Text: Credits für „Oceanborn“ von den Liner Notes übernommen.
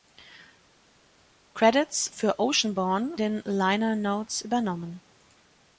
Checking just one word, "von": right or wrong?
wrong